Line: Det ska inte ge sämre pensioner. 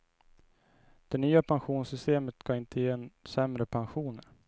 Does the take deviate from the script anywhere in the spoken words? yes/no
yes